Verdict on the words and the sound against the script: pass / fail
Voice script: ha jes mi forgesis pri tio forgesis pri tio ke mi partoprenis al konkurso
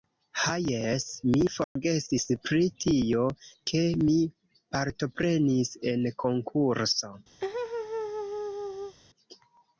fail